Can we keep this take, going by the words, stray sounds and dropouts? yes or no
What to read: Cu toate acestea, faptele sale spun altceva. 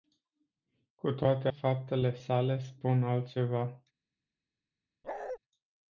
no